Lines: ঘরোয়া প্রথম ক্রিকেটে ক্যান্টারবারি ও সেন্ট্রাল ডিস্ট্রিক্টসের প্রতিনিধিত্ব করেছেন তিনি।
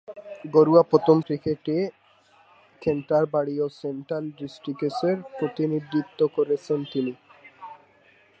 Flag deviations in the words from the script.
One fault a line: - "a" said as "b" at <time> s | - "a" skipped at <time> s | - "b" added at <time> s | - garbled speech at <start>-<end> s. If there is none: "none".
none